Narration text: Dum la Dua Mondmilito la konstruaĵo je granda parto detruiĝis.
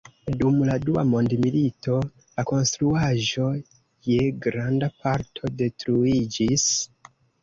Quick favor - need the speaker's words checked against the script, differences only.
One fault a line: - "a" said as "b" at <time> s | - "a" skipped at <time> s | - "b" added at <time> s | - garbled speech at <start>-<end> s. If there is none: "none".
none